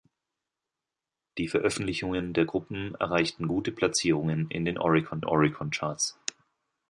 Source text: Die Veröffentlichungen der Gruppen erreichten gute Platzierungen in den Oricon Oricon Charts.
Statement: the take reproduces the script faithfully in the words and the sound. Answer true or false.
true